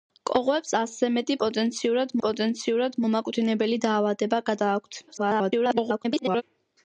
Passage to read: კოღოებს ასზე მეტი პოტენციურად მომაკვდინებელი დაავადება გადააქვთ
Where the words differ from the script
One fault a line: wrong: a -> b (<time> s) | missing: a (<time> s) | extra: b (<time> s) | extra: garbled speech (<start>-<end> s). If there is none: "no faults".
extra: პოტენციურად (2.2 s)
extra: garbled speech (5.1-6.4 s)